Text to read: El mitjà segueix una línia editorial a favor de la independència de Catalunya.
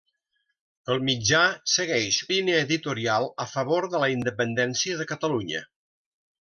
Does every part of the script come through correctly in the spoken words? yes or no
no